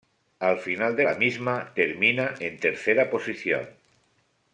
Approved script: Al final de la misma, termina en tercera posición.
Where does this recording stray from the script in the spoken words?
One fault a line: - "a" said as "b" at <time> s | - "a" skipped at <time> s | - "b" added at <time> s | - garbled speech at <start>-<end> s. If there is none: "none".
none